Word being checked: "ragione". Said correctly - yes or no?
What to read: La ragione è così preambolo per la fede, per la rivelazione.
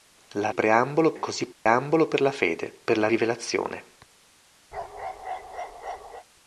no